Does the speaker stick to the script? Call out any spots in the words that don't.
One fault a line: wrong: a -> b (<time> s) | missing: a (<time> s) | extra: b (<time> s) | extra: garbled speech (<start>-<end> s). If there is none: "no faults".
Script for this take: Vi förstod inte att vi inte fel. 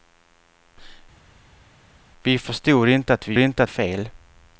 no faults